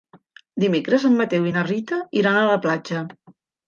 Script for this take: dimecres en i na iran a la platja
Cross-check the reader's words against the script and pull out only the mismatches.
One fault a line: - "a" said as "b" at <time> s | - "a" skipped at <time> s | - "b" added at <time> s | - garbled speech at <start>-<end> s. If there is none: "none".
- "mateu" added at 1.2 s
- "rita" added at 1.7 s